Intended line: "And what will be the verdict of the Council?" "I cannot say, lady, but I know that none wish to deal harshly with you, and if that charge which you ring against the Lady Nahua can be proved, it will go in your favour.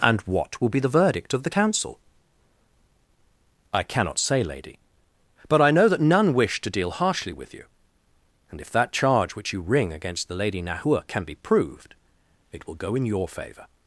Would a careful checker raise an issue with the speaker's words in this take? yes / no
no